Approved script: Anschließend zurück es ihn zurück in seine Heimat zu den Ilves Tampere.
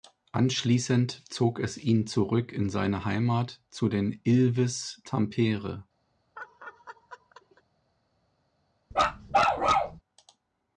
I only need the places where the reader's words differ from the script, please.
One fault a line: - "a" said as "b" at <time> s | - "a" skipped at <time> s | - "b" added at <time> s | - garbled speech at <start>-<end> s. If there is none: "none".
- "zurück" said as "zog" at 1.3 s